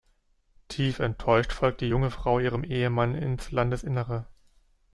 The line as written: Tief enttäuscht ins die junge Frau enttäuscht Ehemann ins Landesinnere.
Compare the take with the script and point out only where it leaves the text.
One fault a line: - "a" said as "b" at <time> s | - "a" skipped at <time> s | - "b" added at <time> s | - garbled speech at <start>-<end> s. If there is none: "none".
- "ins" said as "folgt" at 1.5 s
- "enttäuscht" said as "ihrem" at 2.4 s